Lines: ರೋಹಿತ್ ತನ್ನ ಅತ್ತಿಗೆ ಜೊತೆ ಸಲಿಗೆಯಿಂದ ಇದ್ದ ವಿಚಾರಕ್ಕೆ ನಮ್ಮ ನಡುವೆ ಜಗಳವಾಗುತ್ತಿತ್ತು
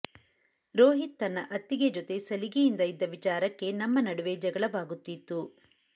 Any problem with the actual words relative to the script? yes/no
no